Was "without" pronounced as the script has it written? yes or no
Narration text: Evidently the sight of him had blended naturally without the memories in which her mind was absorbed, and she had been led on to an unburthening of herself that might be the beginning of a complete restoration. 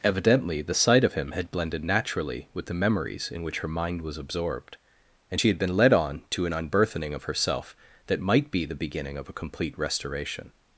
no